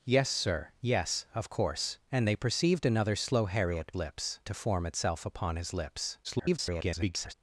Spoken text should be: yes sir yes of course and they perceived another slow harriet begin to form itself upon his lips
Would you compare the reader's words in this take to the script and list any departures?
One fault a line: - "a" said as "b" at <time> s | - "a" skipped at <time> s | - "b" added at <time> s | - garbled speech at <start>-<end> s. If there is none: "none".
- "begin" said as "lips" at 3.9 s
- garbled speech at 6.2-7.3 s